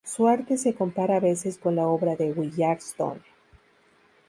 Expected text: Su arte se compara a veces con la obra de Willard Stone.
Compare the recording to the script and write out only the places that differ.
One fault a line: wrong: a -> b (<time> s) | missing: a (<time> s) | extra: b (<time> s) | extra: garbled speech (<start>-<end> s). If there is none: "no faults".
no faults